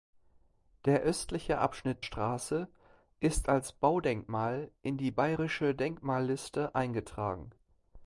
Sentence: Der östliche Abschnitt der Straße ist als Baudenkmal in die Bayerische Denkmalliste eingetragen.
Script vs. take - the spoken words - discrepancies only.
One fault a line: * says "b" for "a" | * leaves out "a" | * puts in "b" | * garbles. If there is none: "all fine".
* leaves out "der"